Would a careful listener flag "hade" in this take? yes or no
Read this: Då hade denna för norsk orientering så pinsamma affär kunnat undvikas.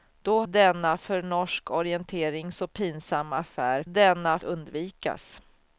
yes